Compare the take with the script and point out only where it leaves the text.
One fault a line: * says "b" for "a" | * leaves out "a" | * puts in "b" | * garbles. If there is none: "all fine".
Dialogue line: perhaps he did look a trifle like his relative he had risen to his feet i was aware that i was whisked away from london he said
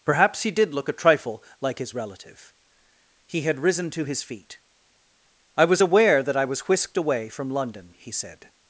all fine